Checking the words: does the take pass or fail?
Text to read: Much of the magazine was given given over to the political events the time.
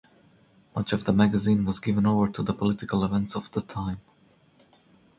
fail